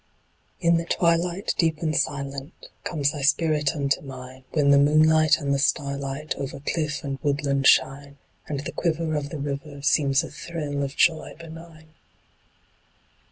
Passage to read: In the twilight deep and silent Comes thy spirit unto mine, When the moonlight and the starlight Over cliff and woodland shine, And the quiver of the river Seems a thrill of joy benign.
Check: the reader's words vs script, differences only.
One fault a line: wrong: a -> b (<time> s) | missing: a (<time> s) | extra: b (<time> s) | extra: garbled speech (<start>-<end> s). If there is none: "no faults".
no faults